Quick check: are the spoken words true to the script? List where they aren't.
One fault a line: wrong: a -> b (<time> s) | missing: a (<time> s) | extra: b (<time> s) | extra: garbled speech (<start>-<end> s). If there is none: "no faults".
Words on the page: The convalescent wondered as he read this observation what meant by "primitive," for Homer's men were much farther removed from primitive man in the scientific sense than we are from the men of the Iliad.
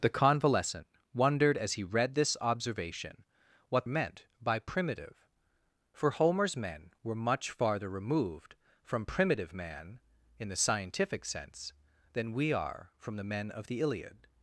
no faults